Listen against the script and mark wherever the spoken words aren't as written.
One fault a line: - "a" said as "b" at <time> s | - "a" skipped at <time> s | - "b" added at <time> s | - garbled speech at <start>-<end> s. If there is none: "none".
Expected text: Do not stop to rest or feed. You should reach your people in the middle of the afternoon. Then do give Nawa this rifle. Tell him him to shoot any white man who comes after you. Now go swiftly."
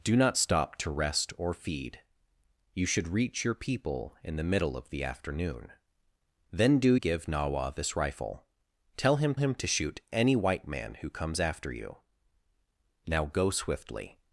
none